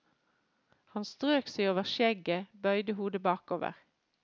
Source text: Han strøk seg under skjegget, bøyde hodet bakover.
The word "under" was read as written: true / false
false